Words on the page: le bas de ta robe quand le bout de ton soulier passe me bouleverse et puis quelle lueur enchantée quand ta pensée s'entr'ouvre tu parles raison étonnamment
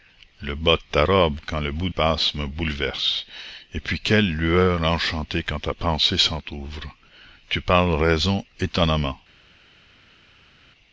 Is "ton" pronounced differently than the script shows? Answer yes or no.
yes